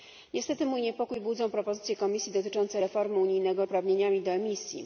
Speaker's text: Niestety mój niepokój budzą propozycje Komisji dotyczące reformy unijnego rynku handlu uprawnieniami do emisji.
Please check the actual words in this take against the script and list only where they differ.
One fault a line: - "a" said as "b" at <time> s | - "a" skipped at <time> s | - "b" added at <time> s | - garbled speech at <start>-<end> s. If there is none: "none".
- "rynku handlu" skipped at 3.6 s